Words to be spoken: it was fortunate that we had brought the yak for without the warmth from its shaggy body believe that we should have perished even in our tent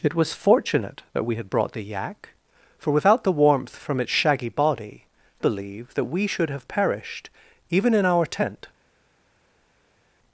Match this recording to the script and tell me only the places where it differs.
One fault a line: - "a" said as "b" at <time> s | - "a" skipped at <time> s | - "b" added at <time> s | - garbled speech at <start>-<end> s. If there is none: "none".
none